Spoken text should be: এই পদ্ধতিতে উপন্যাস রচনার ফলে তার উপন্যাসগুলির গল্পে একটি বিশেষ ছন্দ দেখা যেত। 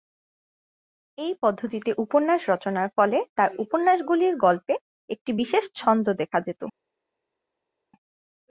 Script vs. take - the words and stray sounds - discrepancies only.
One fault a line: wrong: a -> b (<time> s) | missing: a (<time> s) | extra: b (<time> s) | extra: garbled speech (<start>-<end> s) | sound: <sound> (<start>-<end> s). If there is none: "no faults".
no faults